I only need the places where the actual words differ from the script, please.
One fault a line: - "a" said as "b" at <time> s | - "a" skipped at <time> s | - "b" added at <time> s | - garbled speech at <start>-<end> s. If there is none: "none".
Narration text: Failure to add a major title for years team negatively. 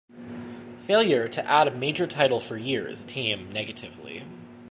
none